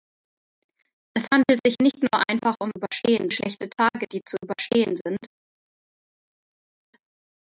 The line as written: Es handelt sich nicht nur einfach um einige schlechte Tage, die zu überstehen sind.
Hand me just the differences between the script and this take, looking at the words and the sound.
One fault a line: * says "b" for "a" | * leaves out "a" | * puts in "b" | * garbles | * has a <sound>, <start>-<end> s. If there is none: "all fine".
* says "überstehen" for "einige"